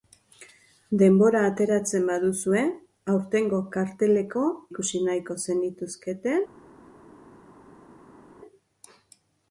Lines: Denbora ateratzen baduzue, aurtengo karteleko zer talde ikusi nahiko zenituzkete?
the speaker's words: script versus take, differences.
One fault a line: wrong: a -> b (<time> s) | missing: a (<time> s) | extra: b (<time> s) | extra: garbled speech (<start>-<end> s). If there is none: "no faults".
missing: zer talde (4.5 s)